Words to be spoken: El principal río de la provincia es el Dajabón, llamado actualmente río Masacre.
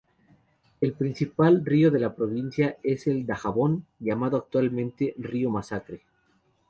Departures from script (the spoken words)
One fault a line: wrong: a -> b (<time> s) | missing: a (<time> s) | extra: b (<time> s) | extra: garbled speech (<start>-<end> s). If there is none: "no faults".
no faults